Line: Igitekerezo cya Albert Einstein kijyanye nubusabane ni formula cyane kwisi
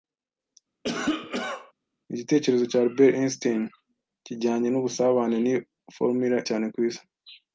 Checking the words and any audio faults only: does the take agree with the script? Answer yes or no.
no